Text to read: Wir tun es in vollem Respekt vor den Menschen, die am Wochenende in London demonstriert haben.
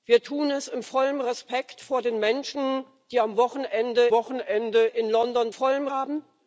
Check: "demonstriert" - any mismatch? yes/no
yes